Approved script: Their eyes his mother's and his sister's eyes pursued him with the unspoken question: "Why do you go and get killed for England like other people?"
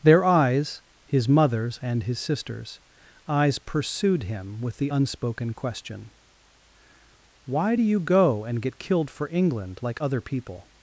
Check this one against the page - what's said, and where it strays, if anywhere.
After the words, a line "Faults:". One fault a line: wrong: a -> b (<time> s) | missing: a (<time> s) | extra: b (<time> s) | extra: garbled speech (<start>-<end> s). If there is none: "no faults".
Their eyes his mother's and his sister's eyes pursued him with the unspoken question: "Why do you go and get killed for England like other people?"
Faults:
no faults